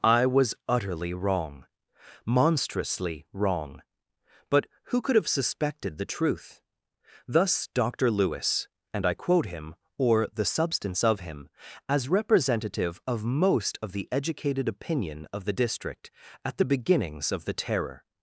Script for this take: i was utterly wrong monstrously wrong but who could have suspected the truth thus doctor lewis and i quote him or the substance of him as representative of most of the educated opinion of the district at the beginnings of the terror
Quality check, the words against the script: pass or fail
pass